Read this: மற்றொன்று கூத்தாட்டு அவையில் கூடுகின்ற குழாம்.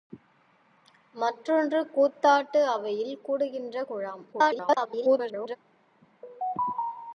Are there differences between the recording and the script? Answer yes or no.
yes